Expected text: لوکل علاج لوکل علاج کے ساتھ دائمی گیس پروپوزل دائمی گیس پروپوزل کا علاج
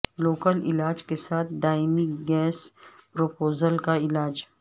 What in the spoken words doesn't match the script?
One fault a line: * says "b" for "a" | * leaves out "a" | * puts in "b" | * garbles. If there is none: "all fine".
* leaves out "لوکل علاج"
* leaves out "دائمی گیس پروپوزل"